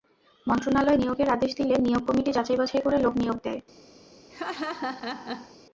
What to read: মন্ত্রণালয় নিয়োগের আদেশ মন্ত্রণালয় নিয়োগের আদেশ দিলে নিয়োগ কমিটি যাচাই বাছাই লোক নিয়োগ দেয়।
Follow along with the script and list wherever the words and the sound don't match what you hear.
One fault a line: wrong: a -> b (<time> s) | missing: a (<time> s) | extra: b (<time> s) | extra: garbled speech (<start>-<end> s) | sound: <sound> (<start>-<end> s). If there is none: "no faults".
missing: মন্ত্রণালয় নিয়োগের আদেশ (1.5 s)
extra: করে (2.8 s)
sound: laugh (4.3-5.6 s)